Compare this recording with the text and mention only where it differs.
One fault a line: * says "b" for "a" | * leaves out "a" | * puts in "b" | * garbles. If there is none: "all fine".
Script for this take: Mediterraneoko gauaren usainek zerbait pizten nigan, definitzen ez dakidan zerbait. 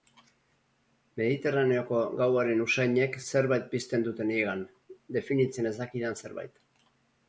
* puts in "dute"